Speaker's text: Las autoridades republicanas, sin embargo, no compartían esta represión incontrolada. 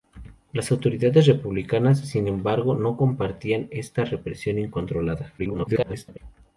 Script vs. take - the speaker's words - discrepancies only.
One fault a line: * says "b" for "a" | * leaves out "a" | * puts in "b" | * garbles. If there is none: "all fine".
* garbles